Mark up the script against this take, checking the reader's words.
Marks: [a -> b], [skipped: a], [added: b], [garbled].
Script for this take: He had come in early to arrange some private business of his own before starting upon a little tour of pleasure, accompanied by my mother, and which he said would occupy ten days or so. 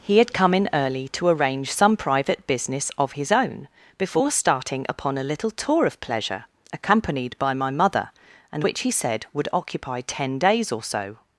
He had come in early to arrange some private business of his own before starting upon a little tour of pleasure, accompanied by my mother, and which he said would occupy ten days or so.